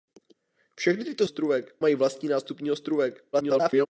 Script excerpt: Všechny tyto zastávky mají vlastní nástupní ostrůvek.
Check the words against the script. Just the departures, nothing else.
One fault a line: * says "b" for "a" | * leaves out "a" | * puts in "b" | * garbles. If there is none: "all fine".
* says "ostrůvek" for "zastávky"
* garbles